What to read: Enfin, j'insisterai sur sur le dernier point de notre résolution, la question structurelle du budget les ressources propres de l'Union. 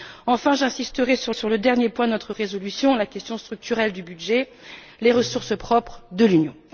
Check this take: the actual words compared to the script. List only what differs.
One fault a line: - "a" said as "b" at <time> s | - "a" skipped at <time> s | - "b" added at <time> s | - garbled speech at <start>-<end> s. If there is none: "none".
none